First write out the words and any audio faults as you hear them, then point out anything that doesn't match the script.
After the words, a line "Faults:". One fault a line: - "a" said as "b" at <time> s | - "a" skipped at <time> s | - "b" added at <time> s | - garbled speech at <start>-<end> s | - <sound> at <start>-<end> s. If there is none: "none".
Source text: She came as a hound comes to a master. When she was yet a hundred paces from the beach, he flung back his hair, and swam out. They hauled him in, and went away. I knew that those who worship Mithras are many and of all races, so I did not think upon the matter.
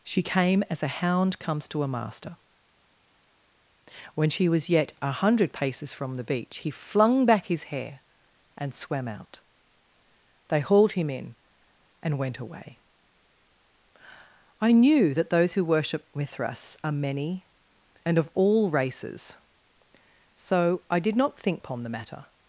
She came as a hound comes to a master. When she was yet a hundred paces from the beach, he flung back his hair, and swam out. They hauled him in, and went away. I knew that those who worship Mithras are many and of all races, so I did not think upon the matter.
Faults:
none